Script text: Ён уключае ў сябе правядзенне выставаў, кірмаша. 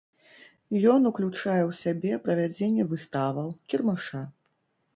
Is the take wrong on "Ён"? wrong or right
right